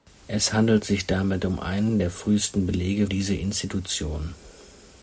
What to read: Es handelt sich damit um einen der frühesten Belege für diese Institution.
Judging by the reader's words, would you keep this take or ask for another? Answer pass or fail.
fail